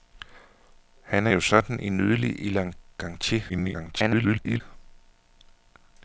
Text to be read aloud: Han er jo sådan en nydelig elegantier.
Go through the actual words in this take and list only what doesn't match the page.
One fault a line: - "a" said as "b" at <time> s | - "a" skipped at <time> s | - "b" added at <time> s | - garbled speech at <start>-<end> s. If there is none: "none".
- garbled speech at 3.5-4.6 s